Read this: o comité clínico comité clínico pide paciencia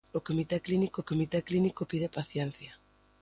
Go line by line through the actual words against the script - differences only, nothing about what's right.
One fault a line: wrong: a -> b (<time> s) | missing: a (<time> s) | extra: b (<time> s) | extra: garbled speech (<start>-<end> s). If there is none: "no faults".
no faults